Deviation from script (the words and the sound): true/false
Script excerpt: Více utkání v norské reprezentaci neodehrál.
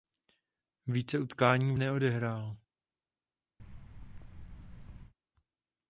true